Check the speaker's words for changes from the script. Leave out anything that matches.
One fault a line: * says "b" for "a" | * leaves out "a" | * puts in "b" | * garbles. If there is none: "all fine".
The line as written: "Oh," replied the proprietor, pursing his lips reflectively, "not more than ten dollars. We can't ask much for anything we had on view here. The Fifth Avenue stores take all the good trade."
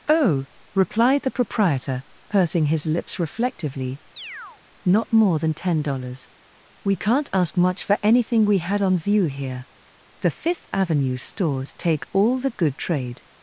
all fine